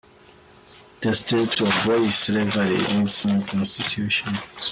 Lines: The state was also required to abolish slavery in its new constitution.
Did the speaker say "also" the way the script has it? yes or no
no